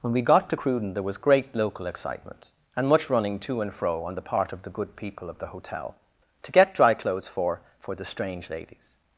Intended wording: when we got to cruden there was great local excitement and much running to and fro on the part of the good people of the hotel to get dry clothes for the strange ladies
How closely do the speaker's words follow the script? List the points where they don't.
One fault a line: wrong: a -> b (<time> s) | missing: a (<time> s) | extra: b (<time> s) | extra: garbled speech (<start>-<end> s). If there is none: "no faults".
extra: for (7.8 s)